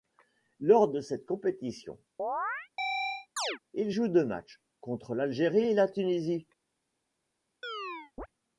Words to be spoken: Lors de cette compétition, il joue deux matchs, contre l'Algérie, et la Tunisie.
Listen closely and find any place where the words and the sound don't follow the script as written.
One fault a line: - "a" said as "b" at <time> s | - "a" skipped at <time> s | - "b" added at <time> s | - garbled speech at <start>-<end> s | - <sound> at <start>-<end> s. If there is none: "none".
- chirp at 2.2-3.6 s
- chirp at 7.6-8.3 s